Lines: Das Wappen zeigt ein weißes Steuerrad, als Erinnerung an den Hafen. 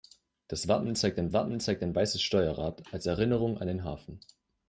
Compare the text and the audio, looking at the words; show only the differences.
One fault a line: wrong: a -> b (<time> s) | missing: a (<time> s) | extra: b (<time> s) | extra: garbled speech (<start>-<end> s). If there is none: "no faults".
extra: Wappen zeigt ein (1.3 s)